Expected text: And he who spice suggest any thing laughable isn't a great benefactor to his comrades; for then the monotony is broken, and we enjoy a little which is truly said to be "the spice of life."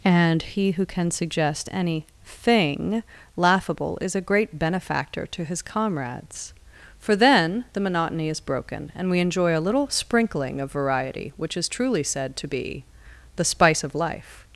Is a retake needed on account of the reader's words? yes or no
yes